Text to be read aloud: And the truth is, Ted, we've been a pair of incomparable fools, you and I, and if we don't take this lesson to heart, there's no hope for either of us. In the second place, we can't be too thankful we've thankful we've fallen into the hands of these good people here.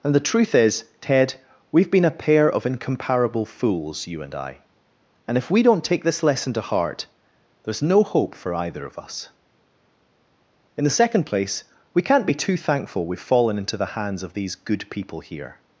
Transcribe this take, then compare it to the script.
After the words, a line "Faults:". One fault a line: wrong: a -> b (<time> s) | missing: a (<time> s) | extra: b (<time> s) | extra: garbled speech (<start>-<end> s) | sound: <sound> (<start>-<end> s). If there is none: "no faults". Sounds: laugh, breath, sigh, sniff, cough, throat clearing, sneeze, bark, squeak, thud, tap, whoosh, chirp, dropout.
And the truth is, Ted, we've been a pair of incomparable fools, you and I, and if we don't take this lesson to heart, there's no hope for either of us. In the second place, we can't be too thankful we've fallen into the hands of these good people here.
Faults:
missing: thankful we've (13.2 s)